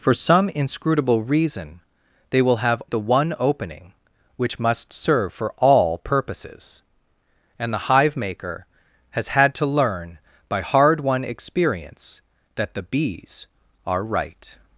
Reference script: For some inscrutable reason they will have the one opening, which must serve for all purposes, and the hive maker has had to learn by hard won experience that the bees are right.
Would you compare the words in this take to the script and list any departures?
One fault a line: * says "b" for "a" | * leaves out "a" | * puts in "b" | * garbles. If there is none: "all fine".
all fine